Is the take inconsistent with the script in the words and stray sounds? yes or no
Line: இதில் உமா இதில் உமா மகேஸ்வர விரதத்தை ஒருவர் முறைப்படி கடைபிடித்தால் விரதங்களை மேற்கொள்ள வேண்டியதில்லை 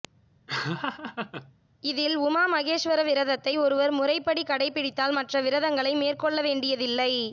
yes